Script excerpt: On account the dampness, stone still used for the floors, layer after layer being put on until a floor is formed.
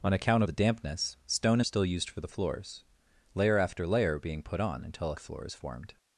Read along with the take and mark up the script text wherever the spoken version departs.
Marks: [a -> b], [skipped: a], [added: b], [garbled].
On account the dampness, stone still used for the floors, layer after layer being put on until a floor is formed.